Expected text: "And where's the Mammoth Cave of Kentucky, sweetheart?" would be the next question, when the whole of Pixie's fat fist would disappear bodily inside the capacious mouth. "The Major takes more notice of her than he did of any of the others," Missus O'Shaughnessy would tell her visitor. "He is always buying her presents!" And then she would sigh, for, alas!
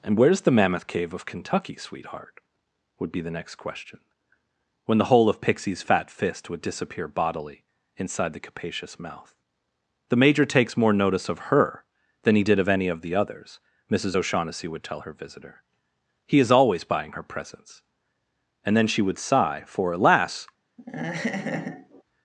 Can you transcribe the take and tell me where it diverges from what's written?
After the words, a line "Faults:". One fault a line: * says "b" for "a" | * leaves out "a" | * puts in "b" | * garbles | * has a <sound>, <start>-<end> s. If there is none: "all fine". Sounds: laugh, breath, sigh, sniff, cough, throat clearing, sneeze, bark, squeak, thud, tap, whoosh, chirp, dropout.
"And where's the Mammoth Cave of Kentucky, sweetheart?" would be the next question, when the whole of Pixie's fat fist would disappear bodily inside the capacious mouth. "The Major takes more notice of her than he did of any of the others," Missus O'Shaughnessy would tell her visitor. "He is always buying her presents!" And then she would sigh, for, alas!
Faults:
* has a laugh, 20.8-22.0 s